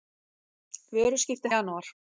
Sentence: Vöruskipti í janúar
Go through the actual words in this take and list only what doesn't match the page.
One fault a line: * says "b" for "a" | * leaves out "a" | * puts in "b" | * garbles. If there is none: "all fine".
all fine